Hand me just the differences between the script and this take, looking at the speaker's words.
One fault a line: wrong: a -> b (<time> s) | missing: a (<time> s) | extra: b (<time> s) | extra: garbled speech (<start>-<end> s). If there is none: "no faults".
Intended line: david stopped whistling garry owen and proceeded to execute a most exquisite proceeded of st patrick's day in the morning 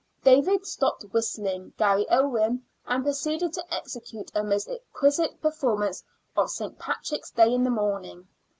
wrong: proceeded -> performance (5.4 s)